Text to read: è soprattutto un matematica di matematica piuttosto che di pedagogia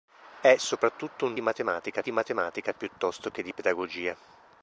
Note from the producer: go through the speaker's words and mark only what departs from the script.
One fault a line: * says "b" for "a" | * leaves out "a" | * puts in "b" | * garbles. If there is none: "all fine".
all fine